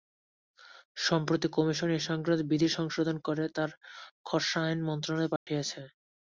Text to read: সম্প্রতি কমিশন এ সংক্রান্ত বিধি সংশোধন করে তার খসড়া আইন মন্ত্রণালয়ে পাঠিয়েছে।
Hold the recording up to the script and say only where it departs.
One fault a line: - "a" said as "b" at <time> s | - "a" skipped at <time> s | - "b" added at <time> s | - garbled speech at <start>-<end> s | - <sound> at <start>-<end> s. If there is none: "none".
- dropout at 5.4-5.5 s